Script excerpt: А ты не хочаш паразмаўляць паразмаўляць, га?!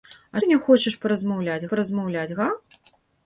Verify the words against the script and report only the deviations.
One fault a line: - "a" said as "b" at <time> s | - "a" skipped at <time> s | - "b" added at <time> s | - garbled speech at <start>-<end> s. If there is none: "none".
none